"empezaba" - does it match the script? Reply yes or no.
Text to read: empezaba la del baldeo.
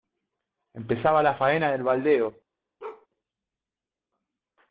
yes